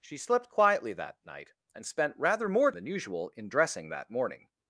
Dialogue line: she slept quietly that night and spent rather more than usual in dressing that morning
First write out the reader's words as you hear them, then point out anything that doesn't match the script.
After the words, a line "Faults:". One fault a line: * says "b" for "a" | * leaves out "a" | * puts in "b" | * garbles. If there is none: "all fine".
she slept quietly that night and spent rather more than usual in dressing that morning
Faults:
all fine